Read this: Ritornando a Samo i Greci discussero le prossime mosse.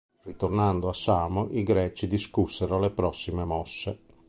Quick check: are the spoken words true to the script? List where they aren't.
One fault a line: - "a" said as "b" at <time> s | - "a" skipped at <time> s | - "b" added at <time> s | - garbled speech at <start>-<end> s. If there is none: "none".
none